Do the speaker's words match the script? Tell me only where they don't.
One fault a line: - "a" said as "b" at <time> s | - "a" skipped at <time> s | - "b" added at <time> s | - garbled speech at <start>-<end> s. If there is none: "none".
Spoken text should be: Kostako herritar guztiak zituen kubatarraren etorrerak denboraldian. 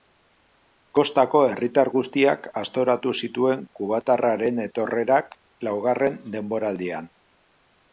- "aztoratu" added at 2.6 s
- "laugarren" added at 5.7 s